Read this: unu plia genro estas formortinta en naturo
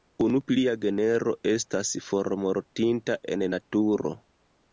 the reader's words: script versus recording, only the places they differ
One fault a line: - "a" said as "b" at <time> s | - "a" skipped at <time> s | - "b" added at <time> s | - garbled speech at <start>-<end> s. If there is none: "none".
none